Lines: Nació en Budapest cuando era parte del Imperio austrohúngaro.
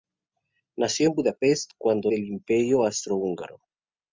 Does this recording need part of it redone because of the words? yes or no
yes